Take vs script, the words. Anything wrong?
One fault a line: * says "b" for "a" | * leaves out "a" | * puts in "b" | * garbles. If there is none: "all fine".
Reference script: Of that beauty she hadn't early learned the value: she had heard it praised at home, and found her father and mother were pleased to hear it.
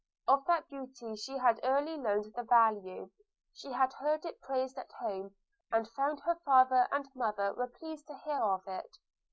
* says "had" for "hadn't"
* puts in "of"